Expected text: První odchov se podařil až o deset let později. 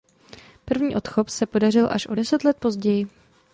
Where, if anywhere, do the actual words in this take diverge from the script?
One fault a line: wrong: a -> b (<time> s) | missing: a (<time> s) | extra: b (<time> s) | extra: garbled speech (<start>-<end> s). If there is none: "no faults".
no faults